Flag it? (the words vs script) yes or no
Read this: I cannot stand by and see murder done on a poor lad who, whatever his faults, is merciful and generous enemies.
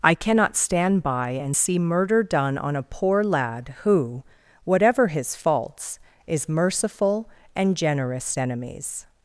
no